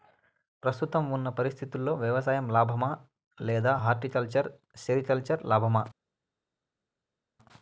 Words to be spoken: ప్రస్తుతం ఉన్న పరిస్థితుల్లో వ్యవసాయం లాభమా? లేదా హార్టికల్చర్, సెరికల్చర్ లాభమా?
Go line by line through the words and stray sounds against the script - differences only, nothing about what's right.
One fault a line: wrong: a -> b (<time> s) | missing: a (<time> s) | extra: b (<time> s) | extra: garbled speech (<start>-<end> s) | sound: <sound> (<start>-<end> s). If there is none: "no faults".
no faults